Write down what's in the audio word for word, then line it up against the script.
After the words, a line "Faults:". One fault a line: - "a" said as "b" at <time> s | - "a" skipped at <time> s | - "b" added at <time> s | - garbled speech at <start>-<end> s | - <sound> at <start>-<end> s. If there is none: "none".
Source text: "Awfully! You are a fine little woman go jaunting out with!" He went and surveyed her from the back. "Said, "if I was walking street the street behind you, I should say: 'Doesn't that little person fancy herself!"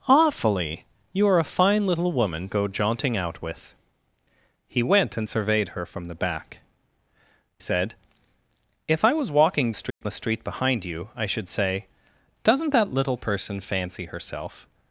"Awfully! You are a fine little woman go jaunting out with!" He went and surveyed her from the back. "Said, "if I was walking street the street behind you, I should say: 'Doesn't that little person fancy herself!"
Faults:
- dropout at 9.9-10.0 s